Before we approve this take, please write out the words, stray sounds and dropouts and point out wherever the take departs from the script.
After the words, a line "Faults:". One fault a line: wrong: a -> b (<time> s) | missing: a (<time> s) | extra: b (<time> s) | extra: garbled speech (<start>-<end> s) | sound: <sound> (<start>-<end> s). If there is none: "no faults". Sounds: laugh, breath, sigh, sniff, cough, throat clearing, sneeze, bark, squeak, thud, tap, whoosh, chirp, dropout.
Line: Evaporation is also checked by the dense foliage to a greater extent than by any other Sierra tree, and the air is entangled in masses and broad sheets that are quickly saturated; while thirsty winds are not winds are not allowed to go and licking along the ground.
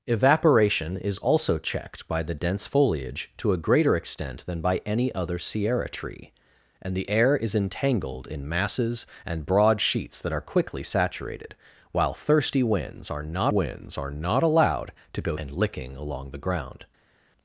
Evaporation is also checked by the dense foliage to a greater extent than by any other Sierra tree, and the air is entangled in masses and broad sheets that are quickly saturated; while thirsty winds are not winds are not allowed to go and licking along the ground.
Faults:
no faults